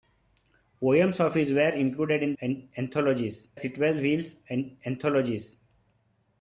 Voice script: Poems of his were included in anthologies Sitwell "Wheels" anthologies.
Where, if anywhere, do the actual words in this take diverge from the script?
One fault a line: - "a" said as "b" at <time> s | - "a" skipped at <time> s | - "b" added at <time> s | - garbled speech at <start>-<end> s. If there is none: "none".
none